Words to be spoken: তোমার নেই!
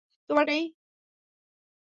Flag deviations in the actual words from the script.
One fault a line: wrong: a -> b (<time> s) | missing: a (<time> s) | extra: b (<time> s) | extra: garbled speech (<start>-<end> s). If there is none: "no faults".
no faults